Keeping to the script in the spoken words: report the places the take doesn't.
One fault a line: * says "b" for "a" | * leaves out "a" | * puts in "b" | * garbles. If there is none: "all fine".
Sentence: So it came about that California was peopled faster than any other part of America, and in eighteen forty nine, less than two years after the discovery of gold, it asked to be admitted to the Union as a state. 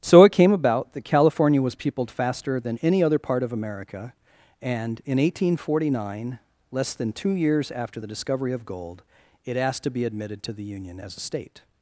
all fine